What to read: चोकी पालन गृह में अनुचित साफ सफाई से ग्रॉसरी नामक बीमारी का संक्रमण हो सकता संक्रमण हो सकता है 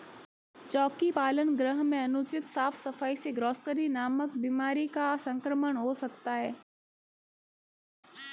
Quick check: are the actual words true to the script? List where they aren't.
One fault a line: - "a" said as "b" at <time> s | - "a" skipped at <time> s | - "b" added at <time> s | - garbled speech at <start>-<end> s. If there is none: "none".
- "संक्रमण हो सकता" skipped at 6.3 s